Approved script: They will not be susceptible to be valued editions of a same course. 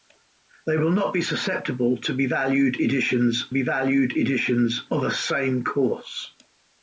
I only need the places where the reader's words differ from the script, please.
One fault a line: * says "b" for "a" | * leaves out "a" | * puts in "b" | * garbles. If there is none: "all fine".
* puts in "be valued editions"